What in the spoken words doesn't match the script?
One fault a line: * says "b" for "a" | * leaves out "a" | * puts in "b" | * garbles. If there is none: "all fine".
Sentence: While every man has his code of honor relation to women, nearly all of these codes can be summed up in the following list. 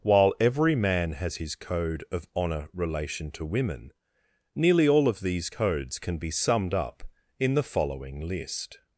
all fine